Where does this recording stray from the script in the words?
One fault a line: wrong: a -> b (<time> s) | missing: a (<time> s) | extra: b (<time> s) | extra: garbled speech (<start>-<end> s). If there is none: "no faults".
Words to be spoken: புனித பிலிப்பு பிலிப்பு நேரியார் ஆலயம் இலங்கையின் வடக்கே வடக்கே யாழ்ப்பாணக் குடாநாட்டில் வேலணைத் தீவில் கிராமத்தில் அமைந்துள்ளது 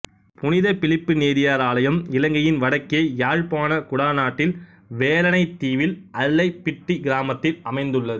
missing: பிலிப்பு (1.1 s)
missing: வடக்கே (3.0 s)
extra: அல்லைப்பிட்டி (6.2 s)